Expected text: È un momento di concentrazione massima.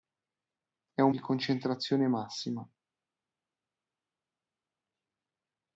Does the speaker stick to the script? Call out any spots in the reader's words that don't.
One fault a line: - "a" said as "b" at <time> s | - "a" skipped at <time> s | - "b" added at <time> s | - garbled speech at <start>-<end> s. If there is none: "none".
- "momento" skipped at 1.1 s